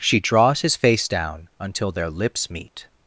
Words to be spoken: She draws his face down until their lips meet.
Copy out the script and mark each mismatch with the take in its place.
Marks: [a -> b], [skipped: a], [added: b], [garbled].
She draws his face down until their lips meet.